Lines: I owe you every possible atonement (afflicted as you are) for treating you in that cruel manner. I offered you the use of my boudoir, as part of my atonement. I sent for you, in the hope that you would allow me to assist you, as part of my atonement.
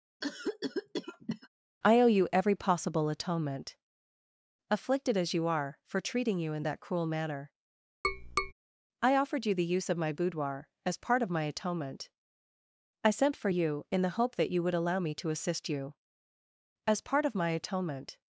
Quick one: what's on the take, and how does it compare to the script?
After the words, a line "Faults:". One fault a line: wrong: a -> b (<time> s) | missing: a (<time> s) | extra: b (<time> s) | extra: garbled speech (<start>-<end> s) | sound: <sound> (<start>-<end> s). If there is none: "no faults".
I owe you every possible atonement (afflicted as you are) for treating you in that cruel manner. I offered you the use of my boudoir, as part of my atonement. I sent for you, in the hope that you would allow me to assist you, as part of my atonement.
Faults:
sound: cough (0.2-1.5 s)
sound: tap (8.0-8.5 s)